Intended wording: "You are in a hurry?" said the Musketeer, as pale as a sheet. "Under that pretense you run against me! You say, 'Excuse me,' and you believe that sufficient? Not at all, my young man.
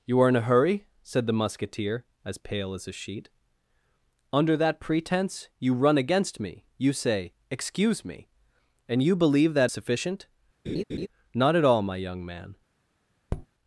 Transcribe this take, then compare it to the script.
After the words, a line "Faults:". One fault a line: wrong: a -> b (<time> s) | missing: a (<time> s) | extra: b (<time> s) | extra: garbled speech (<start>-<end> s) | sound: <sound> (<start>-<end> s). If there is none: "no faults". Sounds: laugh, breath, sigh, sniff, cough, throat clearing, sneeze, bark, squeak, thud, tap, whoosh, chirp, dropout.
"You are in a hurry?" said the Musketeer, as pale as a sheet. "Under that pretense you run against me! You say, 'Excuse me,' and you believe that sufficient? Not at all, my young man.
Faults:
sound: laugh (10.7-11.1 s)
sound: tap (13.3-13.5 s)